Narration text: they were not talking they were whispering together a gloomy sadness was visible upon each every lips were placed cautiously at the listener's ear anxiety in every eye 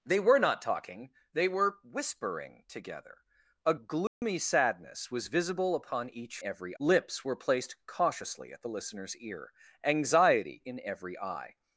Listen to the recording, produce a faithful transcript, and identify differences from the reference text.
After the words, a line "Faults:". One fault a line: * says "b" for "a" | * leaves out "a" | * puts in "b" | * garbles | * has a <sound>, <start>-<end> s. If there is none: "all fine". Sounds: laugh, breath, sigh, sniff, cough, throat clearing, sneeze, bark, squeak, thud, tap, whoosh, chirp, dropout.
they were not talking they were whispering together a gloomy sadness was visible upon each every lips were placed cautiously at the listener's ear anxiety in every eye
Faults:
* has a dropout, 4.1-4.2 s